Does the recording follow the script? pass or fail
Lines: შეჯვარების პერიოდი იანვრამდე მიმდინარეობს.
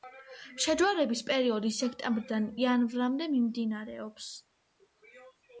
fail